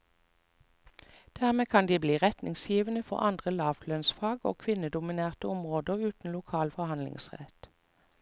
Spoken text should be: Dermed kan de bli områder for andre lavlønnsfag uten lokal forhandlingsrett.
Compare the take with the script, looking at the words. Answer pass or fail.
fail